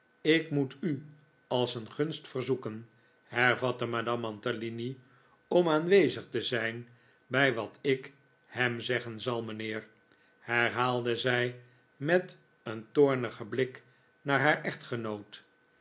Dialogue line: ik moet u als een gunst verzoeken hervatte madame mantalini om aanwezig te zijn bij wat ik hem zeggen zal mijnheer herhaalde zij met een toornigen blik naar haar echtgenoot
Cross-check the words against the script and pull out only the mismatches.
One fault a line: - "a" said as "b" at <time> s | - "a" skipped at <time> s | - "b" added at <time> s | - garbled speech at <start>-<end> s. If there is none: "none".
none